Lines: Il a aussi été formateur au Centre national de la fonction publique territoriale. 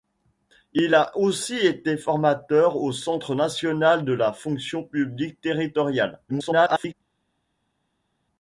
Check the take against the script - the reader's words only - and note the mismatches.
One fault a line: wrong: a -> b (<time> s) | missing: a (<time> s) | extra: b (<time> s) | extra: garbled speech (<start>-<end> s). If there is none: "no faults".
extra: garbled speech (6.3-6.9 s)